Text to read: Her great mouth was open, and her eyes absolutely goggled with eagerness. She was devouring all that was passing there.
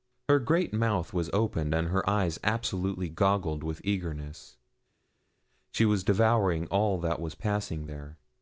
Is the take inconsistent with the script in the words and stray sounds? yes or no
no